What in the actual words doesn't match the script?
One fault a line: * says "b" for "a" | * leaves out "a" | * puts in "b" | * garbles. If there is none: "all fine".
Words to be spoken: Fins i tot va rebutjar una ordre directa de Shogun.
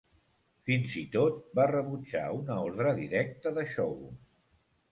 all fine